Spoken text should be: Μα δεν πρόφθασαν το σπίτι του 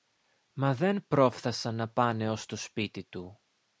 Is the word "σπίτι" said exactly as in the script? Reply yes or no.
yes